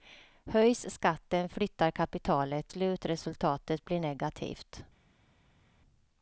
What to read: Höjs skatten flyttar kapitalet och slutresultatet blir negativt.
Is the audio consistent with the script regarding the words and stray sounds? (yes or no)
no